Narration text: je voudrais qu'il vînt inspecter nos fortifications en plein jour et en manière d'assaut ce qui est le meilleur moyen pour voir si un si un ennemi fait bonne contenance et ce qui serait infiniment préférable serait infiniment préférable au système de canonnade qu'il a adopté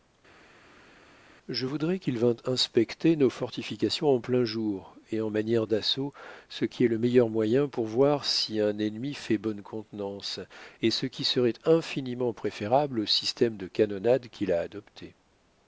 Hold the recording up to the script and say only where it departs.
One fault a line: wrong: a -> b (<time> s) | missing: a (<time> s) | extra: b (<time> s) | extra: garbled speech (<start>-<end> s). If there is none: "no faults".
missing: si un (8.8 s)
missing: serait infiniment préférable (13.0 s)